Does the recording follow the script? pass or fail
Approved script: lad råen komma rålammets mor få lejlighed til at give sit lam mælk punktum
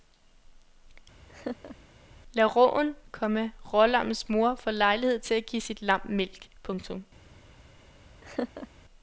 pass